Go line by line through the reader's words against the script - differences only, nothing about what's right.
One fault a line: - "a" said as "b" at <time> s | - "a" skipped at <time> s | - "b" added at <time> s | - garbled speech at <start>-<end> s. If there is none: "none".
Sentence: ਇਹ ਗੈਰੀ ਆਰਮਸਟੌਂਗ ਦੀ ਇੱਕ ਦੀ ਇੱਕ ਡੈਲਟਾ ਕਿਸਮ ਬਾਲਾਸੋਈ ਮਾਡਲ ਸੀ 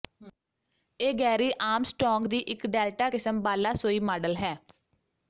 - "ਦੀ ਇੱਕ" skipped at 2.6 s
- "ਸੀ" said as "ਹੈ" at 4.4 s